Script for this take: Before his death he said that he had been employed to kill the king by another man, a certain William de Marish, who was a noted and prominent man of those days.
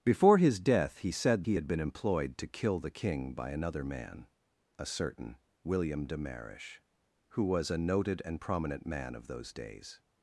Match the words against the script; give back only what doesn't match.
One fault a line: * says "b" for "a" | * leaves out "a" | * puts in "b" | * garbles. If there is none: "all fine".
* leaves out "that"